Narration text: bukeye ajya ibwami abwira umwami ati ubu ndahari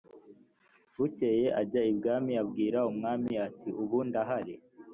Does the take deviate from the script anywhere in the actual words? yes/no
no